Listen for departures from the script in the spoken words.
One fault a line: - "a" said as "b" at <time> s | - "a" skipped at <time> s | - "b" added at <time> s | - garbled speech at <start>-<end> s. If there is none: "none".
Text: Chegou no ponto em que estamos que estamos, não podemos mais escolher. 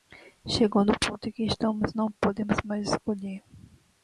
- "que estamos" skipped at 1.9 s